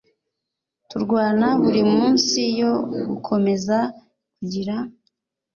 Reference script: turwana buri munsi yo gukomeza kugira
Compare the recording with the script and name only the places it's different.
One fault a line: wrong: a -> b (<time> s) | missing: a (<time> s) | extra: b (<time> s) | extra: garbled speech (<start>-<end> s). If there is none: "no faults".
no faults